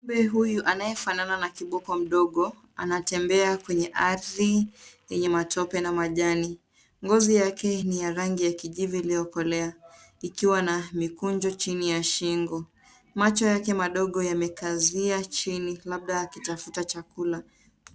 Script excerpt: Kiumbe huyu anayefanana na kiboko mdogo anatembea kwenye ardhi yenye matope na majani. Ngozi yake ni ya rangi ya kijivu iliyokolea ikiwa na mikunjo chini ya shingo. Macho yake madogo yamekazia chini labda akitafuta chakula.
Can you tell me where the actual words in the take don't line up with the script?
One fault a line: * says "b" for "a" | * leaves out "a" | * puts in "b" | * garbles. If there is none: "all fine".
all fine